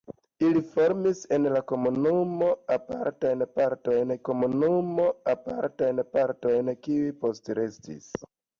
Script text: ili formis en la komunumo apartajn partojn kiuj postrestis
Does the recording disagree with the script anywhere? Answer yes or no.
yes